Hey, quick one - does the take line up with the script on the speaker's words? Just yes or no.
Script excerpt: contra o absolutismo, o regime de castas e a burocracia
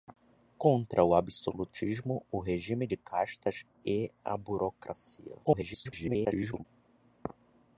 no